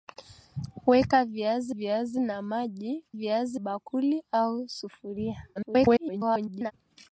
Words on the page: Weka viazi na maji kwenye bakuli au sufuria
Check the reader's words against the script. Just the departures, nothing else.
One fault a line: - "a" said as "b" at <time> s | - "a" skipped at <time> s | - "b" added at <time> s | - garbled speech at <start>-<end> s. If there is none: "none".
- "viazi" added at 1.7 s
- "kwenye" said as "viazi" at 3.1 s
- garbled speech at 5.6-6.7 s